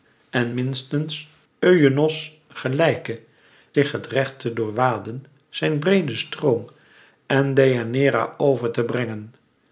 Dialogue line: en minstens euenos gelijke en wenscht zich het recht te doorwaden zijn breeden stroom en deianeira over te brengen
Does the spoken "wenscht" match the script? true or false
false